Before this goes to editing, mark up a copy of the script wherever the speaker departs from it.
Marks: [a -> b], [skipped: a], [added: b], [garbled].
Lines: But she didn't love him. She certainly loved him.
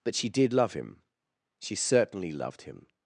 But she [didn't -> did] love him. She certainly loved him.